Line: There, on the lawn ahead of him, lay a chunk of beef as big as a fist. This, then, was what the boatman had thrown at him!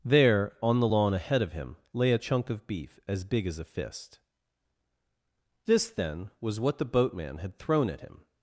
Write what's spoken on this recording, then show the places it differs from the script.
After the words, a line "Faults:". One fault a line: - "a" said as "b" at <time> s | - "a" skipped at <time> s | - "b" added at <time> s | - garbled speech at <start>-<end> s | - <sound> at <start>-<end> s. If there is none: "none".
There, on the lawn ahead of him, lay a chunk of beef as big as a fist. This, then, was what the boatman had thrown at him!
Faults:
none